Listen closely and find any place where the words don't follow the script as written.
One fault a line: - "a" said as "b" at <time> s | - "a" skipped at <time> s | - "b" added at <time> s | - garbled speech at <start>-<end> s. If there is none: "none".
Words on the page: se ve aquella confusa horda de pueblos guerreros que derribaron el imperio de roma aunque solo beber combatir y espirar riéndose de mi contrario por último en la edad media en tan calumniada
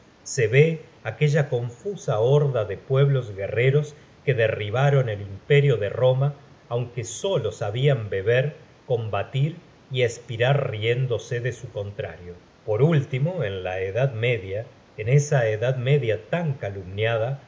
- "sabian" added at 7.5 s
- "mi" said as "su" at 11.5 s
- "esa edad media" added at 15.1 s